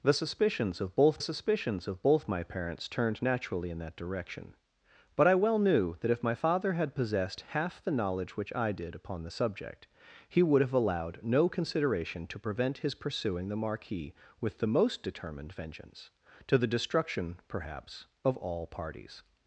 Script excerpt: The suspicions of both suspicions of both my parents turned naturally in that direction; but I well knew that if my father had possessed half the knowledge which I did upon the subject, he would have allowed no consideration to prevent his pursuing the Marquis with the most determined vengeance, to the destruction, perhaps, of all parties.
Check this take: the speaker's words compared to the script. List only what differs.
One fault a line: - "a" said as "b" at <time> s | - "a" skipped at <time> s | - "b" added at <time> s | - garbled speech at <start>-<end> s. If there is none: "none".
none